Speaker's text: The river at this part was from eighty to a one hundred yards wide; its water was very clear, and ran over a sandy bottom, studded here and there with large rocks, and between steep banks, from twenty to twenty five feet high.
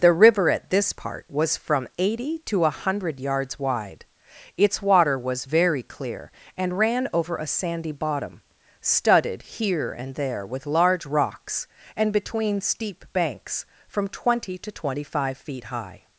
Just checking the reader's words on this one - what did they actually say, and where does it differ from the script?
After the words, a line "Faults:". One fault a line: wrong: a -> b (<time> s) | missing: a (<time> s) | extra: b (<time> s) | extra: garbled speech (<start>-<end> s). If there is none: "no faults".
The river at this part was from eighty to a hundred yards wide; its water was very clear, and ran over a sandy bottom, studded here and there with large rocks, and between steep banks, from twenty to twenty five feet high.
Faults:
missing: one (2.7 s)